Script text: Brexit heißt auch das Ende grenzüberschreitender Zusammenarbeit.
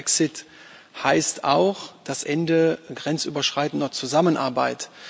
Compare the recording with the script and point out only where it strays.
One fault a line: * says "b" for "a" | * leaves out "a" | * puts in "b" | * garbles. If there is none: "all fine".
all fine